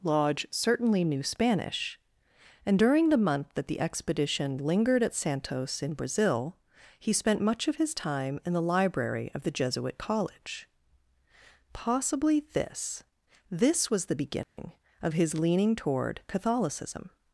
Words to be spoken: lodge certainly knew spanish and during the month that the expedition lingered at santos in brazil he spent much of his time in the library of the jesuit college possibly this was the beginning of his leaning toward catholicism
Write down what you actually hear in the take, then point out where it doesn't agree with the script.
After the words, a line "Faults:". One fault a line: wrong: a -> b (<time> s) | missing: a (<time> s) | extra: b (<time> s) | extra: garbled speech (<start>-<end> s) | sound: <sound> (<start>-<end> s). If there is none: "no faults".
lodge certainly knew spanish and during the month that the expedition lingered at santos in brazil he spent much of his time in the library of the jesuit college possibly this this was the beginning of his leaning toward catholicism
Faults:
extra: this (13.5 s)
sound: dropout (14.4-14.6 s)